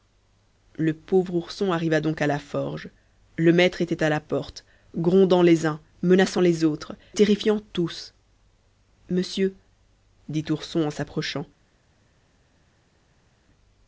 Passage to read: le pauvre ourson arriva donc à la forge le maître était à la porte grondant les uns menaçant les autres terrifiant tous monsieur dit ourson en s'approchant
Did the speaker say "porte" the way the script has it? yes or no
yes